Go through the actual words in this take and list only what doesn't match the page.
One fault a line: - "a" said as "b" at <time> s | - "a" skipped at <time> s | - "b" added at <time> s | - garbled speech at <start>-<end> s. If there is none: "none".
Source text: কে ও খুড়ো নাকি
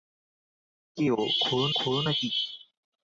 - "খুড়ো" added at 1.7 s